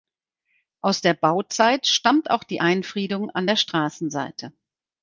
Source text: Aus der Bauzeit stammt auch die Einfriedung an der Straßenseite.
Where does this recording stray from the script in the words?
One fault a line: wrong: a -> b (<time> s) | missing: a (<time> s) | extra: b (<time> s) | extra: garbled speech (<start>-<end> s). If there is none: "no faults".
no faults